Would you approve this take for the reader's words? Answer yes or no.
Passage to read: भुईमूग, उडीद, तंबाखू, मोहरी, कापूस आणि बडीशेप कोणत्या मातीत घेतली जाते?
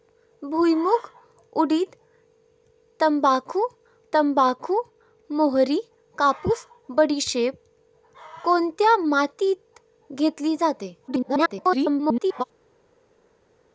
no